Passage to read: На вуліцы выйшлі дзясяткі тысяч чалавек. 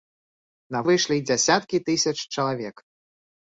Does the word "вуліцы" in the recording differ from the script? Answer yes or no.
yes